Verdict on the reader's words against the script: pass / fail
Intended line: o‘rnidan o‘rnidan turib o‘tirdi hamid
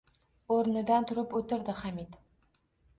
fail